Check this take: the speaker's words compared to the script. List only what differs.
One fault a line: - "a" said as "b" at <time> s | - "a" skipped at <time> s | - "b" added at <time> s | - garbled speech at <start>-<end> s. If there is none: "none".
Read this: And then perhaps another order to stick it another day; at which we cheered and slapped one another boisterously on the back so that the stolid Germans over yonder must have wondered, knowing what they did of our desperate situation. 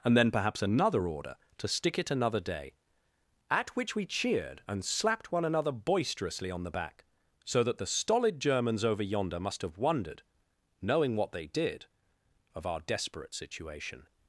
none